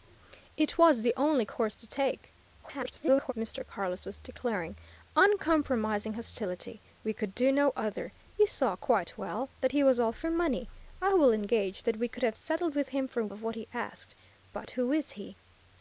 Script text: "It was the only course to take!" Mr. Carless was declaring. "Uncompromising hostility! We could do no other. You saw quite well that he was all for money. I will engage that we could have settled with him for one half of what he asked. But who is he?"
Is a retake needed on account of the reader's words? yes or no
yes